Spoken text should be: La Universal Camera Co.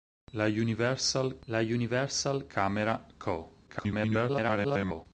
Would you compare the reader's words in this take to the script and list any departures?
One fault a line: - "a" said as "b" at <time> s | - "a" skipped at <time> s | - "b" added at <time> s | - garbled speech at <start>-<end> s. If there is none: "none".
- "la Universal" added at 1.5 s
- garbled speech at 3.7-5.1 s